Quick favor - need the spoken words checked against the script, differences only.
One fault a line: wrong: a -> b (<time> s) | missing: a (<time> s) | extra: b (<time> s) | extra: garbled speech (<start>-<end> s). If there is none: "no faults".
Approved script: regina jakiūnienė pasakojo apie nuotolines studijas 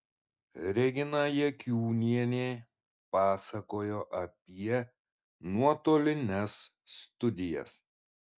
no faults